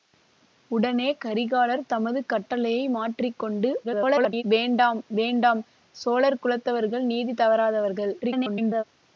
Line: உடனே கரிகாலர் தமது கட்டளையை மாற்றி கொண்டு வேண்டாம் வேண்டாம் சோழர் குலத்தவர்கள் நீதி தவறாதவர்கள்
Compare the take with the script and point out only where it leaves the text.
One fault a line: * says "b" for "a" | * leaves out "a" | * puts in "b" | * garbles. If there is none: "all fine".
* garbles
* garbles